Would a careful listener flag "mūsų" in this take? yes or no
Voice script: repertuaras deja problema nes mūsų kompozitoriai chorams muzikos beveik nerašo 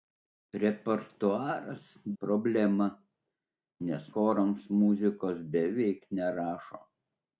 yes